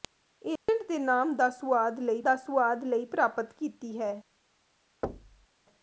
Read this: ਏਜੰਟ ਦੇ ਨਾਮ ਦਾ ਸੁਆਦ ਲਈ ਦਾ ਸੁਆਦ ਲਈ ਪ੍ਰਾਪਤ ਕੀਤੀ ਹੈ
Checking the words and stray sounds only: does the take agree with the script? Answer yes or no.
no